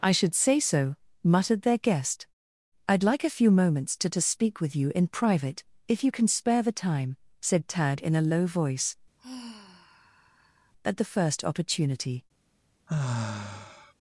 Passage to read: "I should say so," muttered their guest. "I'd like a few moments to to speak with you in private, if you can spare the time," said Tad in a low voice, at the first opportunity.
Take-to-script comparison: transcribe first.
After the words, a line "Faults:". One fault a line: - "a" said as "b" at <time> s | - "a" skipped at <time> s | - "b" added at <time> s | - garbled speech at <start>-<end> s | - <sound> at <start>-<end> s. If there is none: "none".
"I should say so," muttered their guest. "I'd like a few moments to to speak with you in private, if you can spare the time," said Tad in a low voice, at the first opportunity.
Faults:
- sigh at 9.2-10.7 s
- sigh at 12.9-13.9 s